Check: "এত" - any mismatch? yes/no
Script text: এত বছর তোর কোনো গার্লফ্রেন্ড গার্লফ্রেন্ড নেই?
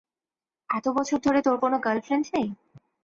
no